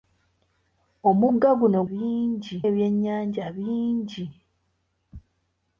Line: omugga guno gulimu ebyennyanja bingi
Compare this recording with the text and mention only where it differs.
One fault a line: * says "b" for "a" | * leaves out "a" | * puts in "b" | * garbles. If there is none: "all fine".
* says "bingi" for "gulimu"